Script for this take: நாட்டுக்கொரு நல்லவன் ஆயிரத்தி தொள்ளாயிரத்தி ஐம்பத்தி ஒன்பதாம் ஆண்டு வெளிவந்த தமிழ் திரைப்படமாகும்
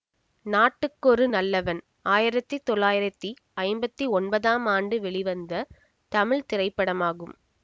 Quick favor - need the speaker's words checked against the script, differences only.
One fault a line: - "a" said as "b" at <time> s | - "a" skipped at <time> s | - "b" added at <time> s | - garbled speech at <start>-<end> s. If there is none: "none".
none